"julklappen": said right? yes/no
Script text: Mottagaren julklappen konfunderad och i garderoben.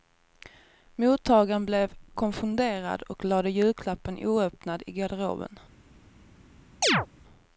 no